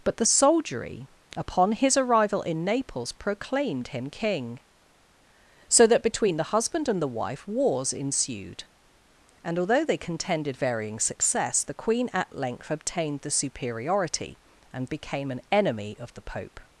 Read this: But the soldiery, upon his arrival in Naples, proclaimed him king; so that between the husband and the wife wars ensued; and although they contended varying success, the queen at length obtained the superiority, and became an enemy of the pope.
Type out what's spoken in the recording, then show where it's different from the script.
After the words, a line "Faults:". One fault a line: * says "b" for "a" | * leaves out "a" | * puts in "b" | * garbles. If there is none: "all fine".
But the soldiery, upon his arrival in Naples, proclaimed him king; so that between the husband and the wife wars ensued; and although they contended varying success, the queen at length obtained the superiority, and became an enemy of the pope.
Faults:
all fine